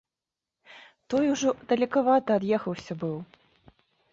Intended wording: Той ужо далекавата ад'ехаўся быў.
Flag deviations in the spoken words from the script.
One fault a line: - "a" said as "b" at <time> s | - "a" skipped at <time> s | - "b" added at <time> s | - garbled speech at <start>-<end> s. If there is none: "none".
none